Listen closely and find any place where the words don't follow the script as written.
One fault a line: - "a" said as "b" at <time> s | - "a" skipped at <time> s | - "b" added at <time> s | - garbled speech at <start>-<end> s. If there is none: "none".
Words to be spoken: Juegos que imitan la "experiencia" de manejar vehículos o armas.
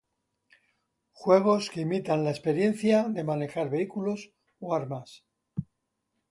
none